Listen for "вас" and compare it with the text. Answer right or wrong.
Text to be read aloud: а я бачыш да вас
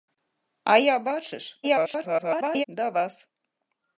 right